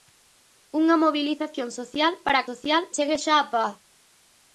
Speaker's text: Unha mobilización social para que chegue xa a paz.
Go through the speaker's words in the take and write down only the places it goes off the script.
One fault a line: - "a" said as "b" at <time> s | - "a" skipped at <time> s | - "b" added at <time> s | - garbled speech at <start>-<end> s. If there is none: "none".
- "que" said as "social" at 2.5 s